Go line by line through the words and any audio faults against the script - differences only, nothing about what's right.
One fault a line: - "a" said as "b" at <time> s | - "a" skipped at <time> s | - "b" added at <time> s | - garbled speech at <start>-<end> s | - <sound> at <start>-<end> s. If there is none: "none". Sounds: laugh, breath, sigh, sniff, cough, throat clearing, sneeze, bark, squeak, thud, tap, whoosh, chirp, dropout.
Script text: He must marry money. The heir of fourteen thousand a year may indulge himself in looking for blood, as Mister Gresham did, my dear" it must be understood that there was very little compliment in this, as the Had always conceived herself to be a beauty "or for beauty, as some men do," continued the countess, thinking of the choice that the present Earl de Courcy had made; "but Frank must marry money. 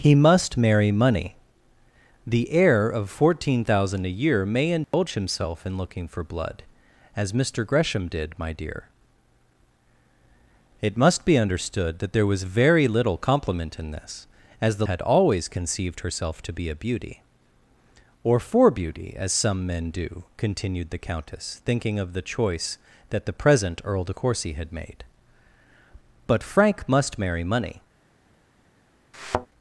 - dropout at 4.8-4.9 s
- thud at 29.1-29.5 s